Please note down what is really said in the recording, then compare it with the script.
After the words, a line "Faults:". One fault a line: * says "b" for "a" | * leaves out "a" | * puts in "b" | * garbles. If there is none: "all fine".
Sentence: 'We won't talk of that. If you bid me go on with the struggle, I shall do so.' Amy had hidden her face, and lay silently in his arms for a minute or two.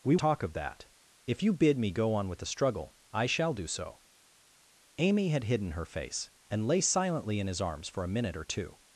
'We talk of that. If you bid me go on with the struggle, I shall do so.' Amy had hidden her face, and lay silently in his arms for a minute or two.
Faults:
* leaves out "won't"